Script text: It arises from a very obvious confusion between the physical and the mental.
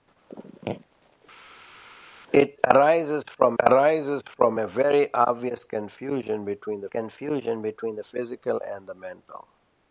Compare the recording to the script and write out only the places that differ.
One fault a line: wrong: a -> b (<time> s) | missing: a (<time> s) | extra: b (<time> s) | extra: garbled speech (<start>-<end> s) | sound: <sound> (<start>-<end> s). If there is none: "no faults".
extra: arises from (3.6 s)
extra: confusion between the (6.9 s)